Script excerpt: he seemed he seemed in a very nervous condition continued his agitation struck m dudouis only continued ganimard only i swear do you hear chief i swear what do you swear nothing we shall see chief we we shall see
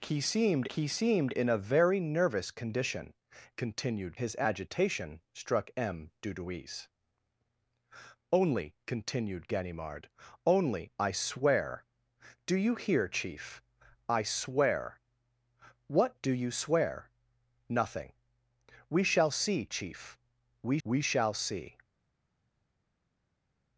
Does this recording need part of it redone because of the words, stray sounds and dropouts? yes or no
no